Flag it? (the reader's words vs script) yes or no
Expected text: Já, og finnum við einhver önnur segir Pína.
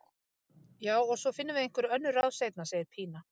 yes